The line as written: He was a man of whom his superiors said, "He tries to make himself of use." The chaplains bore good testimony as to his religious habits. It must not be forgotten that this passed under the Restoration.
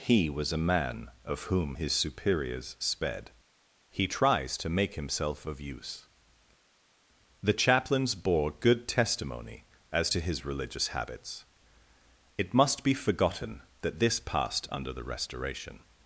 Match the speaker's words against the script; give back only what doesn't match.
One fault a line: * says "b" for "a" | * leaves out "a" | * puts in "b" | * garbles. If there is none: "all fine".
* says "sped" for "said"
* leaves out "not"